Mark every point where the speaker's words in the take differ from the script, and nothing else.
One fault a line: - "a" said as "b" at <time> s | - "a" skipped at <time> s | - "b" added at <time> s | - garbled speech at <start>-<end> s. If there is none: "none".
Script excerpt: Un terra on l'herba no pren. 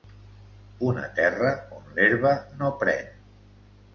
- "Un" said as "Una" at 0.9 s